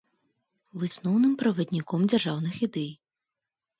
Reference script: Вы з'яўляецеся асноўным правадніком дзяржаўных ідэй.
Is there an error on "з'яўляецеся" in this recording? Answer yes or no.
yes